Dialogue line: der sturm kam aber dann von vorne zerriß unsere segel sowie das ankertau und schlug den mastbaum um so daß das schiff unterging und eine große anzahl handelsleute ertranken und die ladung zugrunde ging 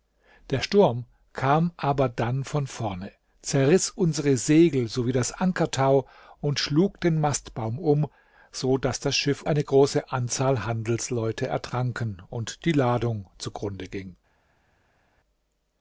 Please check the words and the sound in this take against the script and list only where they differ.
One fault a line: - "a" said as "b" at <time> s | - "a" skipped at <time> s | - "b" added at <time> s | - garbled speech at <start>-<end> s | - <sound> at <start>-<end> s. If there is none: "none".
- "unterging und" skipped at 9.4 s